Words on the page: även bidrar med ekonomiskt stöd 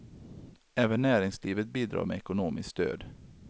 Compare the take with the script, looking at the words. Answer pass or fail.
fail